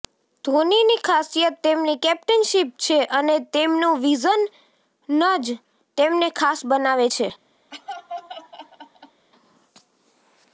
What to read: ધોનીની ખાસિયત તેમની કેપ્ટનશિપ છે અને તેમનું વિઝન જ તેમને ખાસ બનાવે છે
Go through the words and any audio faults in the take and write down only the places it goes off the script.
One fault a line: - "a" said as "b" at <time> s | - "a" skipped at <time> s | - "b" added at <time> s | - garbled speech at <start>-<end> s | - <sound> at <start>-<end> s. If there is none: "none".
- laugh at 7.7-9.3 s